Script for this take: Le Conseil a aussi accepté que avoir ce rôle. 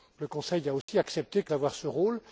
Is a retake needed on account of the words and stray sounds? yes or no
yes